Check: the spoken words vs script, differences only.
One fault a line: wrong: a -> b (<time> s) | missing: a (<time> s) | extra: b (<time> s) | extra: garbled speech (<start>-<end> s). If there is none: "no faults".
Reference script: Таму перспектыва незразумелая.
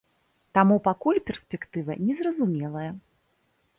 extra: пакуль (0.9 s)